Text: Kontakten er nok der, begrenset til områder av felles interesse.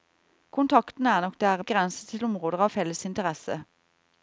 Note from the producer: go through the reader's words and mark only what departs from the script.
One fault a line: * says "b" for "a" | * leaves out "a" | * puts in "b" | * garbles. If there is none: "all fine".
all fine